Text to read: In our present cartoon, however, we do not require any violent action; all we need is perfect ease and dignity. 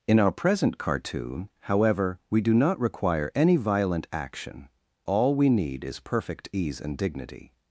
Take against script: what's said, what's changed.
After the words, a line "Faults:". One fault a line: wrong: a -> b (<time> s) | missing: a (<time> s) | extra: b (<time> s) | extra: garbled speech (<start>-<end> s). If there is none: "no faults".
In our present cartoon, however, we do not require any violent action; all we need is perfect ease and dignity.
Faults:
no faults